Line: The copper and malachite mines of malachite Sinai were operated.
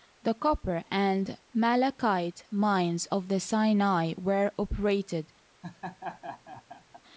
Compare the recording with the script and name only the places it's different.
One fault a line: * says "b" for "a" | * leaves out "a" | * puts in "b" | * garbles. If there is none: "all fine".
* says "the" for "malachite"